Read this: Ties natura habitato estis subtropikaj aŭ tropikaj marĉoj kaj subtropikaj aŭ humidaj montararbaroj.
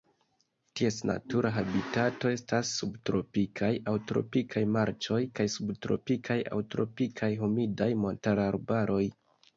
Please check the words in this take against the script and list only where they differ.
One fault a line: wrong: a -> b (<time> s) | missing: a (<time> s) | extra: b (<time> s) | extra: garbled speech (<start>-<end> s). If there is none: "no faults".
wrong: estis -> estas (2.4 s)
extra: tropikaj (6.8 s)